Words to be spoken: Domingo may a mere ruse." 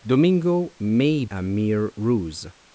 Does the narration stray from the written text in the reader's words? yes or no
no